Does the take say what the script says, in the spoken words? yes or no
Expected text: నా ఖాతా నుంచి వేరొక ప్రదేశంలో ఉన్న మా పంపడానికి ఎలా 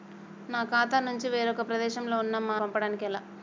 yes